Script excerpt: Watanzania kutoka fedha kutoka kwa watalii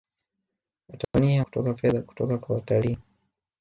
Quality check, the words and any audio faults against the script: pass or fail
fail